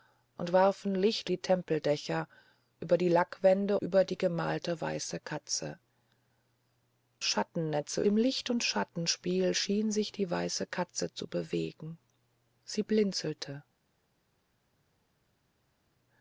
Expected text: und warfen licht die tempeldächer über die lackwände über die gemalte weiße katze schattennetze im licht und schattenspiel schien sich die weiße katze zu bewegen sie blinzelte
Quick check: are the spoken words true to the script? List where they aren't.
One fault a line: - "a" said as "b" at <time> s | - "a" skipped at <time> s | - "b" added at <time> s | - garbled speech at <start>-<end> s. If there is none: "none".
none